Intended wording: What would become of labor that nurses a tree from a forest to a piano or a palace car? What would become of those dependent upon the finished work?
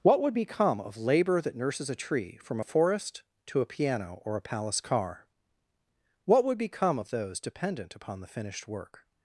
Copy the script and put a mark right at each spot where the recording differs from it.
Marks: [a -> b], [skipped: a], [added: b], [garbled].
What would become of labor that nurses a tree from a forest to a piano or a palace car? What would become of those dependent upon the finished work?